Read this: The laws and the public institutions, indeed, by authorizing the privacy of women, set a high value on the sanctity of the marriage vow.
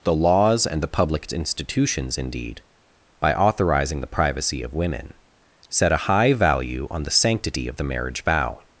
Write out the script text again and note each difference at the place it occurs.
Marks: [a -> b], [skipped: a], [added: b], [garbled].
The laws and the public institutions, indeed, by authorizing the privacy of women, set a high value on the sanctity of the marriage vow.